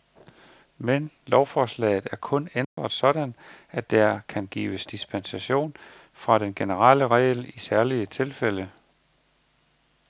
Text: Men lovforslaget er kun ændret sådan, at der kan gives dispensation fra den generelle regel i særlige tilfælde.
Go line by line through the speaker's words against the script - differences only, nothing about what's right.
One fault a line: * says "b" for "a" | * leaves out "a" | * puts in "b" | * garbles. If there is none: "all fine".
all fine